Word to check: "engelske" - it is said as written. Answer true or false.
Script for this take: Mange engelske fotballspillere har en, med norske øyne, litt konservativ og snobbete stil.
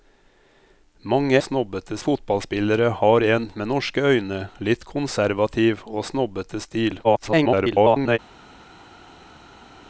false